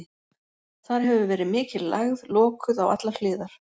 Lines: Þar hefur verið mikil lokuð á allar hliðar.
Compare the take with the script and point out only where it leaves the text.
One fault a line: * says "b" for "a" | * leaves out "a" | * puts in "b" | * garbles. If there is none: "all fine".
* puts in "lægð"